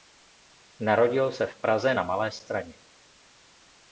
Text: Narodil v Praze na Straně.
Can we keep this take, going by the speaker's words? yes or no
no